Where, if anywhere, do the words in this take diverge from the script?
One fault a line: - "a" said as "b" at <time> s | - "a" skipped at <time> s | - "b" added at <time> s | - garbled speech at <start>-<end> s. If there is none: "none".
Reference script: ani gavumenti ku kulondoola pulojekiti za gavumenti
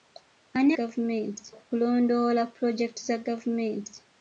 none